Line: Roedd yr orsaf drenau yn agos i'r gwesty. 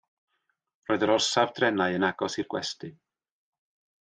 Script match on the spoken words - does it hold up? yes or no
yes